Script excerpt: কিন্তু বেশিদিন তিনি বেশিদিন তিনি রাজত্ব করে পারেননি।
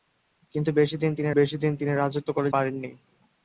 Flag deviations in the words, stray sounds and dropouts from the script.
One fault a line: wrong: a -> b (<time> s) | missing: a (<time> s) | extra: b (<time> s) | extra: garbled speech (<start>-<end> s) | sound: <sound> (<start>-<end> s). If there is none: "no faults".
no faults